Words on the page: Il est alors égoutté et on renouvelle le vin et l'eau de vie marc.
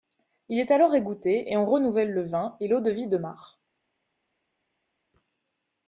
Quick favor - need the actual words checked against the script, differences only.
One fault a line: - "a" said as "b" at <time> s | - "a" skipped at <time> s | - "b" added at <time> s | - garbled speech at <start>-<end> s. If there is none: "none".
- "de" added at 3.1 s